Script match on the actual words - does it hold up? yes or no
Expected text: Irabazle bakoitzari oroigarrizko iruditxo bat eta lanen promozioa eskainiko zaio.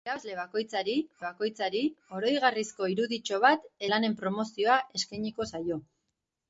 no